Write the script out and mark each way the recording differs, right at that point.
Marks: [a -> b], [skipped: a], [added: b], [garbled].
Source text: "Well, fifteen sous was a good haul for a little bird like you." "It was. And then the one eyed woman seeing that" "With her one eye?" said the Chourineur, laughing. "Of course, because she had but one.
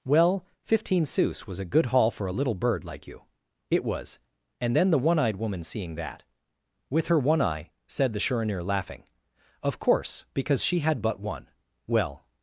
"Well, fifteen sous was a good haul for a little bird like you." "It was. And then the one eyed woman seeing that" "With her one eye?" said the Chourineur, laughing. "Of course, because she had but one. [added: Well]